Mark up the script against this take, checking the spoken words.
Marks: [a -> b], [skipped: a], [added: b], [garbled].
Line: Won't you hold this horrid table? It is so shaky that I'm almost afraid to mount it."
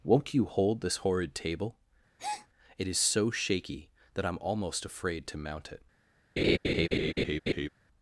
Won't you hold this horrid table? It is so shaky that I'm almost afraid to mount it."